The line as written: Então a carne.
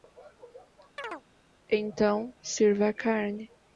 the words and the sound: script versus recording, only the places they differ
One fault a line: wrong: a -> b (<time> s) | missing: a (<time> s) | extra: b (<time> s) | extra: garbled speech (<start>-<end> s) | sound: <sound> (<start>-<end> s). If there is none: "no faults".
sound: chirp (1.0-1.2 s)
extra: sirva (2.4 s)